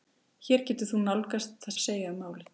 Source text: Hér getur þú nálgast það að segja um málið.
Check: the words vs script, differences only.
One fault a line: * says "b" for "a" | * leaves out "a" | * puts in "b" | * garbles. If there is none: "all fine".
all fine